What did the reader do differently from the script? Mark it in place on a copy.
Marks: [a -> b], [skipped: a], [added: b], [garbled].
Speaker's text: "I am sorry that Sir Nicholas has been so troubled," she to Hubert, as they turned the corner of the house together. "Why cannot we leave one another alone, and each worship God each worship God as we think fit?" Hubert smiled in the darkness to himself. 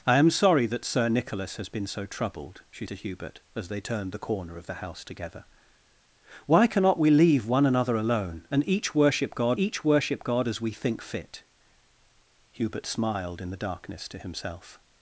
"I am sorry that Sir Nicholas has been so troubled," she to Hubert, as they turned the corner of the house together. "Why cannot we leave one another alone, and each worship God each worship God as we think fit?" Hubert smiled in the darkness to himself.